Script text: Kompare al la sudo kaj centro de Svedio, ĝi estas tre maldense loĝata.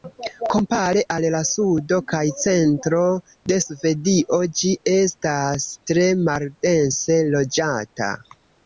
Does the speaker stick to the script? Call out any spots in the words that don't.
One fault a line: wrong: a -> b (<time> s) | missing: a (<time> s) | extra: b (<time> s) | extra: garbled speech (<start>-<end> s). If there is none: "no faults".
no faults